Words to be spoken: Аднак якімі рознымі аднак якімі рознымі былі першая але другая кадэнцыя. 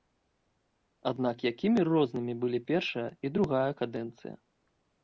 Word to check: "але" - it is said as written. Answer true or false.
false